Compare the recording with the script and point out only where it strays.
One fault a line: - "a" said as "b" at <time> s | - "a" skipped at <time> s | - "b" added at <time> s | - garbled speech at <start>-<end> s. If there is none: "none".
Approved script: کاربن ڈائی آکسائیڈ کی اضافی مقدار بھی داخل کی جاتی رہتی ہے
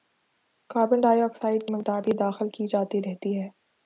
- "کی اضافی" skipped at 1.7 s